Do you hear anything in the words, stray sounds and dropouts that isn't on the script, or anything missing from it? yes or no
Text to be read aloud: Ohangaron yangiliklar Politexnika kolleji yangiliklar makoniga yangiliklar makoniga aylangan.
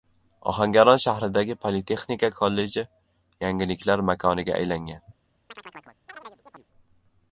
yes